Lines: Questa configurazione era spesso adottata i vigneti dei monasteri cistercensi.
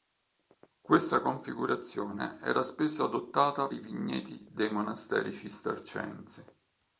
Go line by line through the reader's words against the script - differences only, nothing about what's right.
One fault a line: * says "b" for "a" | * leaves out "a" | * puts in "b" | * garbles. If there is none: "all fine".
all fine